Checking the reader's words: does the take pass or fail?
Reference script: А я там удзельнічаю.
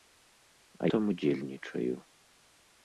fail